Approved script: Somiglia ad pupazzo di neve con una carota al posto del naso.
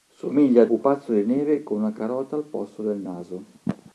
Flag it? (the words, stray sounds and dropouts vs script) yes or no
no